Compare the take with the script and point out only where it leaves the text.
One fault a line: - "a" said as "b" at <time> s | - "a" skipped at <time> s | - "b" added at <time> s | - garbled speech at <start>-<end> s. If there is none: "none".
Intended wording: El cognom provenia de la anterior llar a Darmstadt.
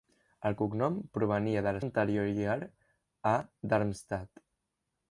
none